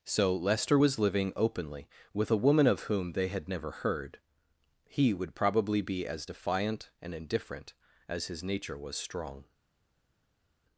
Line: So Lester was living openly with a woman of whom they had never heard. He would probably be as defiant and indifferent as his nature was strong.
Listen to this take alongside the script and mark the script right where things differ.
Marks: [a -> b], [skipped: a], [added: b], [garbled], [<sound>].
So Lester was living openly with a woman of whom they had never heard. He would probably be as defiant and indifferent as his nature was strong.